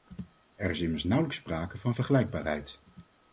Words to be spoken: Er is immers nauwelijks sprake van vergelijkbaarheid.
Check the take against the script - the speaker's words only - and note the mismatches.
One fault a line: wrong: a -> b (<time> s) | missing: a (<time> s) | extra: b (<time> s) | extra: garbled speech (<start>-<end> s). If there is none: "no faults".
no faults